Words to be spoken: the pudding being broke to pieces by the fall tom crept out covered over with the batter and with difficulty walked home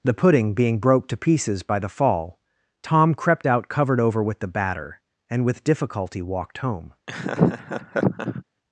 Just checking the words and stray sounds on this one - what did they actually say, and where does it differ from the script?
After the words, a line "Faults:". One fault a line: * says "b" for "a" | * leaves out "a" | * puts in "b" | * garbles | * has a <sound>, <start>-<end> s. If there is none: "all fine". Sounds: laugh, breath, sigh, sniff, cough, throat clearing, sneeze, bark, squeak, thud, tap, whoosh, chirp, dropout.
the pudding being broke to pieces by the fall tom crept out covered over with the batter and with difficulty walked home
Faults:
* has a laugh, 7.1-8.4 s